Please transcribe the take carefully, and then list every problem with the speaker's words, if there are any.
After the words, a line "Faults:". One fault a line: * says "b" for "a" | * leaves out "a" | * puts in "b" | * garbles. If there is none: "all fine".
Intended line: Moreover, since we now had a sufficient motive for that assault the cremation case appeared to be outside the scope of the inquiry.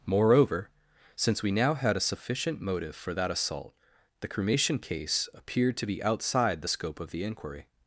Moreover, since we now had a sufficient motive for that assault the cremation case appeared to be outside the scope of the inquiry.
Faults:
all fine